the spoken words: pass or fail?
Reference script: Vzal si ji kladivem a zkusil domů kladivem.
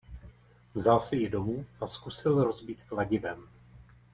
fail